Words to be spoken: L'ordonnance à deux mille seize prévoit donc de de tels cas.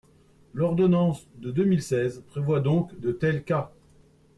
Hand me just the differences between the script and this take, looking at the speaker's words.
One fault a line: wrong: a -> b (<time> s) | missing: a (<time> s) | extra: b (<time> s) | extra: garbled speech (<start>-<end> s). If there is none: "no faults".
wrong: à -> de (1.4 s)
missing: de (3.1 s)